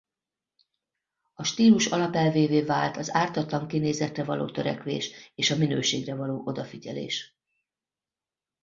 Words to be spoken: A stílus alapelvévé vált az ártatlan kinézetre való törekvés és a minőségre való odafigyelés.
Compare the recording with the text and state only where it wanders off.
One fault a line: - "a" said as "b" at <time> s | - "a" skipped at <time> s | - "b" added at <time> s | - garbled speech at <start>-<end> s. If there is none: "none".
none